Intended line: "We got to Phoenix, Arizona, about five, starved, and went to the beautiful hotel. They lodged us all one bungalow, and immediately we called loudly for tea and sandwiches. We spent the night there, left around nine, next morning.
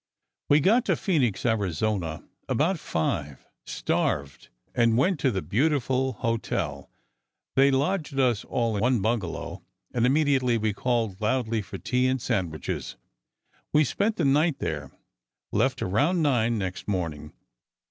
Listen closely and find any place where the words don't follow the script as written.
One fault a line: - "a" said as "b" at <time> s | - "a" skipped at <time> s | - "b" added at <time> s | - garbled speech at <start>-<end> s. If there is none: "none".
none